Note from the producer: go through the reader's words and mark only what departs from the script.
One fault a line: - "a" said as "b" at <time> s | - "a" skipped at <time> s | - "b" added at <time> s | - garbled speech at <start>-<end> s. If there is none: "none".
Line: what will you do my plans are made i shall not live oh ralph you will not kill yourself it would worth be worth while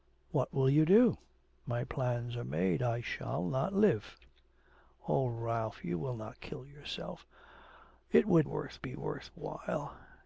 none